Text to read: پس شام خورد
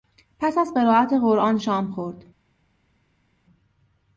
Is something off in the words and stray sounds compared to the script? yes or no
yes